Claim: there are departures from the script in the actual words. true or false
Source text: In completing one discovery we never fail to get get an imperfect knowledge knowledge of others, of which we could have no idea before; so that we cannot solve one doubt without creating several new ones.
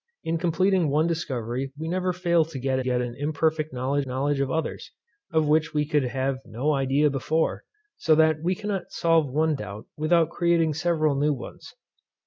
false